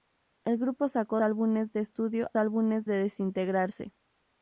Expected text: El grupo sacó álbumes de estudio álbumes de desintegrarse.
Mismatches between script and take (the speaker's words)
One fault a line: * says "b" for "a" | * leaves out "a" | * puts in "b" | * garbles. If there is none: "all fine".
all fine